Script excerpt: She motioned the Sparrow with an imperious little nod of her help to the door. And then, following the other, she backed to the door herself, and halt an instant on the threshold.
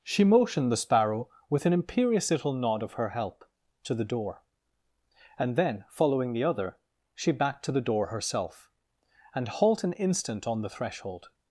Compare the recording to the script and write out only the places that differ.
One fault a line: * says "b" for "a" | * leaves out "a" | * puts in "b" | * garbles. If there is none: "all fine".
all fine